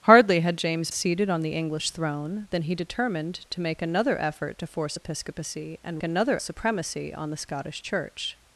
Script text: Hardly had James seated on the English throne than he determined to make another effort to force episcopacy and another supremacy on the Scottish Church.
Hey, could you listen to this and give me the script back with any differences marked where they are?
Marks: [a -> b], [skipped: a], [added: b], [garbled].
Hardly had James seated on the English throne than he determined to make another effort to force episcopacy and another supremacy on the Scottish Church.